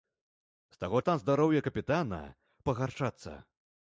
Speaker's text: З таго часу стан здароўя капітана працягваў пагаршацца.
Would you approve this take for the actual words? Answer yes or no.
no